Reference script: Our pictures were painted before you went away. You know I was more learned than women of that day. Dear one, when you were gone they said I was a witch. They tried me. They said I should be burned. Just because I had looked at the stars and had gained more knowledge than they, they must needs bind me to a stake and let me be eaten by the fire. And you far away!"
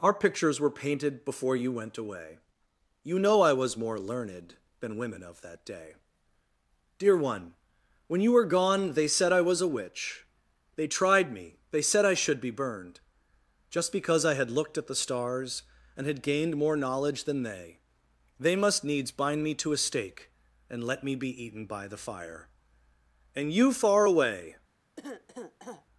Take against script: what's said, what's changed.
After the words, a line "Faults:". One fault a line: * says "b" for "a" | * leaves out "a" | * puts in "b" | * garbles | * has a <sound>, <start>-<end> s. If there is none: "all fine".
Our pictures were painted before you went away. You know I was more learned than women of that day. Dear one, when you were gone they said I was a witch. They tried me. They said I should be burned. Just because I had looked at the stars and had gained more knowledge than they, they must needs bind me to a stake and let me be eaten by the fire. And you far away!"
Faults:
* has a cough, 25.0-25.9 s